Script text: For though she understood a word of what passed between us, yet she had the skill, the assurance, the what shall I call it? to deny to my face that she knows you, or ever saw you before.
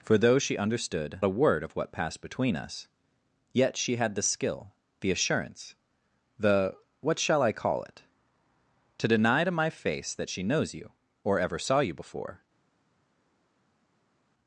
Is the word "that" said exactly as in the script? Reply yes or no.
yes